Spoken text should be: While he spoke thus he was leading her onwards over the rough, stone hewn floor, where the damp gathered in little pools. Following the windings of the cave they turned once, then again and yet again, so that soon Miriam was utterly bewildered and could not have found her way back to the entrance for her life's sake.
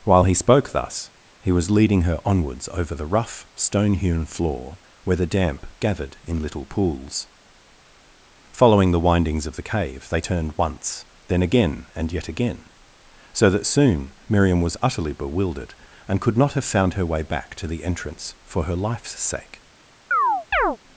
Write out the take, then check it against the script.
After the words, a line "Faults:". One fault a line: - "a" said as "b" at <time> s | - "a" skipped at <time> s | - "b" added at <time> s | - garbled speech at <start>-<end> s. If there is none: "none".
While he spoke thus he was leading her onwards over the rough, stone hewn floor, where the damp gathered in little pools. Following the windings of the cave they turned once, then again and yet again, so that soon Miriam was utterly bewildered and could not have found her way back to the entrance for her life's sake.
Faults:
none